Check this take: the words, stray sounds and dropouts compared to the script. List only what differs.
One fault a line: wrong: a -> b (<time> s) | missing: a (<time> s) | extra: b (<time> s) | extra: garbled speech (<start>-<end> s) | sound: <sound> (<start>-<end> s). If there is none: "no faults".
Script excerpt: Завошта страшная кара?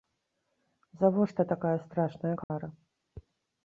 extra: такая (1.4 s)
sound: dropout (2.4-2.5 s)